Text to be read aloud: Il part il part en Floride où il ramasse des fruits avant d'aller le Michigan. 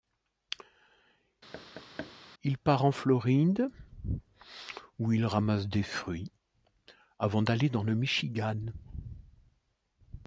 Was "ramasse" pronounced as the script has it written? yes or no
yes